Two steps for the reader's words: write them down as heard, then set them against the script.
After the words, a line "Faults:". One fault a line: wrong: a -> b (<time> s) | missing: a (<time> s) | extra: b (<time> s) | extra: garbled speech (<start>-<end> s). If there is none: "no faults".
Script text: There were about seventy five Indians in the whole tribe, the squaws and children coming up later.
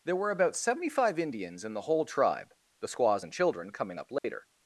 There were about seventy five Indians in the whole tribe, the squaws and children coming up later.
Faults:
no faults